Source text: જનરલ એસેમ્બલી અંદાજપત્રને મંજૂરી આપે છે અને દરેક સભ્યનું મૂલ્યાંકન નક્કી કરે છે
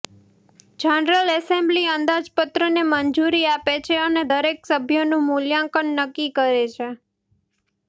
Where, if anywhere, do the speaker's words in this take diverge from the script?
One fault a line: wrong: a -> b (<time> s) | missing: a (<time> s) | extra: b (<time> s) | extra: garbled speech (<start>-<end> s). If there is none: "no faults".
no faults